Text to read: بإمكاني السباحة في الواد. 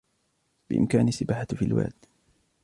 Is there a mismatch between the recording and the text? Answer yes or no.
no